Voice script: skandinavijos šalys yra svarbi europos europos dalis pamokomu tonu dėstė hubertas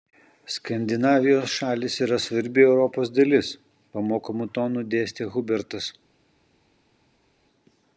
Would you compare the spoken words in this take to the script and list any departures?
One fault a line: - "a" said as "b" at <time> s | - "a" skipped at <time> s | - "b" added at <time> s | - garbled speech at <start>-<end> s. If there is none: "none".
- "europos" skipped at 3.1 s